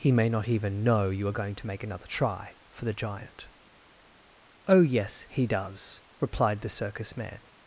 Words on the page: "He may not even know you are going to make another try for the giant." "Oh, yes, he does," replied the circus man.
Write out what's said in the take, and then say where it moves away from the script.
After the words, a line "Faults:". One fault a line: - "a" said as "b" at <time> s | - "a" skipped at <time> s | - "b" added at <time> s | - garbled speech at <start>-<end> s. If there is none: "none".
"He may not even know you are going to make another try for the giant." "Oh, yes, he does," replied the circus man.
Faults:
none